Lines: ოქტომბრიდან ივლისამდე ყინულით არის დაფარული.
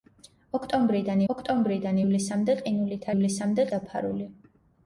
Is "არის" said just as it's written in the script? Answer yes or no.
no